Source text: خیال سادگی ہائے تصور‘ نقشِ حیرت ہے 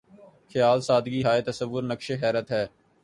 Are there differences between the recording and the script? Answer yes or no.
no